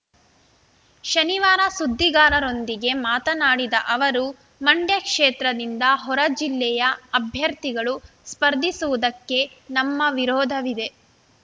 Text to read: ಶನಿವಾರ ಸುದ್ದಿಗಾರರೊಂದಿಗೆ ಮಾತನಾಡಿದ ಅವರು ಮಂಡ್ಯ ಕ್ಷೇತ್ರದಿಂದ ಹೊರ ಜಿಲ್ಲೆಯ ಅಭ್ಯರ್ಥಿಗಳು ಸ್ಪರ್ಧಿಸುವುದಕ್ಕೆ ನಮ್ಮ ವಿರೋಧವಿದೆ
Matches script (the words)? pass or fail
pass